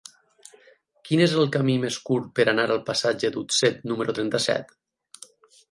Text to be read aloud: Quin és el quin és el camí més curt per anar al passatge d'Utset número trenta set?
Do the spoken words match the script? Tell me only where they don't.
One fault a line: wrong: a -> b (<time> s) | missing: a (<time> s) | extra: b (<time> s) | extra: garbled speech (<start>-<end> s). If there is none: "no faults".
missing: quin és el (1.5 s)